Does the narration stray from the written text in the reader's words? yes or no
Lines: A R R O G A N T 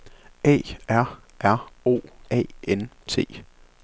yes